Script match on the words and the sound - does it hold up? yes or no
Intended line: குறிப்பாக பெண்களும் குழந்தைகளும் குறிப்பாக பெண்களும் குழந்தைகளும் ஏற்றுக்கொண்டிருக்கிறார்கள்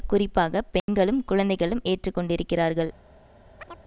no